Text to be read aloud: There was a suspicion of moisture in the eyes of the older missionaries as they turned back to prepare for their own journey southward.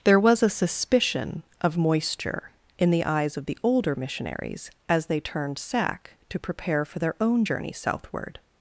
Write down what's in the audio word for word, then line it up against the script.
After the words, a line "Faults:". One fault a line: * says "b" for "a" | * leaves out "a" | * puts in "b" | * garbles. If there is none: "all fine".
There was a suspicion of moisture in the eyes of the older missionaries as they turned sack to prepare for their own journey southward.
Faults:
* says "sack" for "back"